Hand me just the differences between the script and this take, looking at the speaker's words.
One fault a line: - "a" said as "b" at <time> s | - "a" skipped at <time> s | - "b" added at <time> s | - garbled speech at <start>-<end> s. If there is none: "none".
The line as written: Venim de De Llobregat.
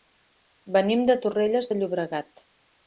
- "Torrelles" added at 1.3 s